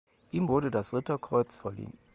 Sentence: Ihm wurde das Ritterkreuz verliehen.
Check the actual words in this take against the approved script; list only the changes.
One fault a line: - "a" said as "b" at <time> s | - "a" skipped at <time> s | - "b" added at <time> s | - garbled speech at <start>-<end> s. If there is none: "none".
none